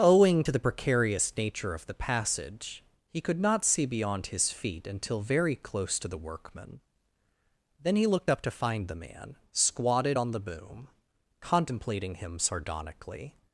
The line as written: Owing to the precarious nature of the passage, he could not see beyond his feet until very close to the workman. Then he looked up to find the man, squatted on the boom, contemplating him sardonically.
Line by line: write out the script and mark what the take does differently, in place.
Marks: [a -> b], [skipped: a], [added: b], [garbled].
Owing to the precarious nature of the passage, he could not see beyond his feet until very close to the workman. Then he looked up to find the man, squatted on the boom, contemplating him sardonically.